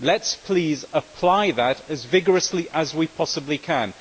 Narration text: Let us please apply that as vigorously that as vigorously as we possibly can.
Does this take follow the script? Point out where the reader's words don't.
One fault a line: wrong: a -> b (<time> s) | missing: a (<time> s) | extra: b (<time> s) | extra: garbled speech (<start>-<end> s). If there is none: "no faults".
missing: that as vigorously (2.7 s)